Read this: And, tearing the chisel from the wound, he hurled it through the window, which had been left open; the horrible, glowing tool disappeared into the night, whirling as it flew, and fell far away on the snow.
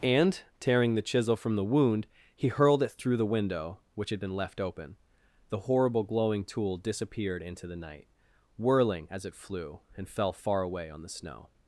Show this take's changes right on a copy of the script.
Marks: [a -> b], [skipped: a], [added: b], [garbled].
And, tearing the chisel from the wound, he hurled it through the window, which had been left open; the horrible, glowing tool disappeared into the night, whirling as it flew, and fell far away on the snow.